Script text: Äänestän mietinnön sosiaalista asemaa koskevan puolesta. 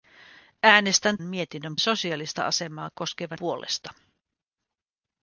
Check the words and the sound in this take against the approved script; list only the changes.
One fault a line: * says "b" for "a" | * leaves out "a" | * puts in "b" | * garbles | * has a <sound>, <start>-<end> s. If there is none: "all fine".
all fine